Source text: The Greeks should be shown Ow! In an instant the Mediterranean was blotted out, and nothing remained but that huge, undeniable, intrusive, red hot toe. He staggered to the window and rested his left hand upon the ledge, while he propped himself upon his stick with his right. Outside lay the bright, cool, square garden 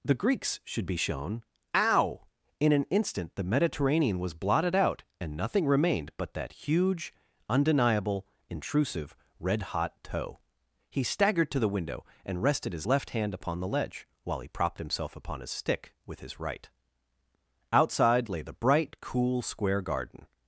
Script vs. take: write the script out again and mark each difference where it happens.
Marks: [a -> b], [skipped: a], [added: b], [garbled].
The Greeks should be shown Ow! In an instant the Mediterranean was blotted out, and nothing remained but that huge, undeniable, intrusive, red hot toe. He staggered to the window and rested his left hand upon the ledge, while he propped himself upon his stick with his right. Outside lay the bright, cool, square garden